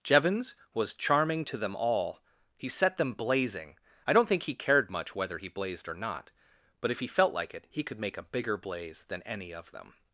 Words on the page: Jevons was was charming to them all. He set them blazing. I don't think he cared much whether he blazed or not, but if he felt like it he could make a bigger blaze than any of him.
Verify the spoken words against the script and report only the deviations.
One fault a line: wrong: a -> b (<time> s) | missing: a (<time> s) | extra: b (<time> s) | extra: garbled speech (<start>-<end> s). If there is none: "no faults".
missing: was (0.9 s)
wrong: him -> them (9.7 s)